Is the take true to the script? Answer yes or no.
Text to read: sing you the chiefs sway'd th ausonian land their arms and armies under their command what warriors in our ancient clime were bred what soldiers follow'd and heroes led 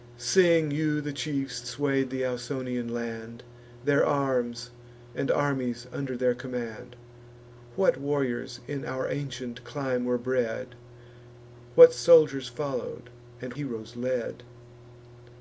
yes